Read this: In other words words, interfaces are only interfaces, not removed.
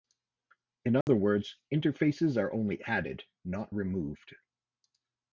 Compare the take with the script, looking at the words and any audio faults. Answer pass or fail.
fail